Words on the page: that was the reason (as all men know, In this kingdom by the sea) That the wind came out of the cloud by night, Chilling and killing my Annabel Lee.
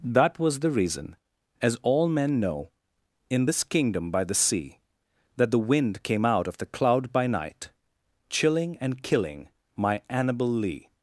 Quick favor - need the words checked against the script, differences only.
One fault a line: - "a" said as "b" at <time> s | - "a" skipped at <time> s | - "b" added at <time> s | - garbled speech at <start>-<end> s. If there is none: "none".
none